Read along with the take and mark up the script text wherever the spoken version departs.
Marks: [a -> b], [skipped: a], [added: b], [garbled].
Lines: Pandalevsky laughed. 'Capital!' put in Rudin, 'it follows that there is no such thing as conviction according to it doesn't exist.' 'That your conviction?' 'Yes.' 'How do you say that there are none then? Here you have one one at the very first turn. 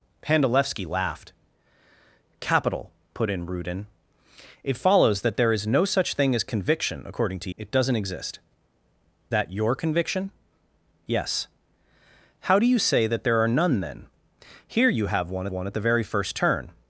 Pandalevsky laughed. 'Capital!' put in Rudin, 'it follows that there is no such thing as conviction according to it doesn't exist.' 'That your conviction?' 'Yes.' 'How do you say that there are none then? Here you have one one at the very first turn.